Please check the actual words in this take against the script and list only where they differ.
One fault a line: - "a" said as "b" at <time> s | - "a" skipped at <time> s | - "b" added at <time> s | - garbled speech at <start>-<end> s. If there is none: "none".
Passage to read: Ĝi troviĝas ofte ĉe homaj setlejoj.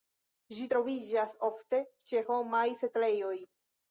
none